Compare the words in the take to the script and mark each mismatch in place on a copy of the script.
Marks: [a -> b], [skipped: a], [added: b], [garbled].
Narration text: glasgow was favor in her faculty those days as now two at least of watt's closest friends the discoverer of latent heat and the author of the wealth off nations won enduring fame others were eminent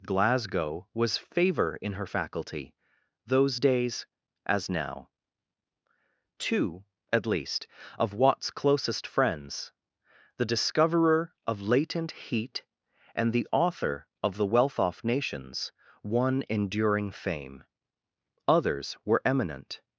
glasgow was favor in her faculty those days as now two at least of watt's closest friends the discoverer of latent heat and the author of the wealth off nations won enduring fame others were eminent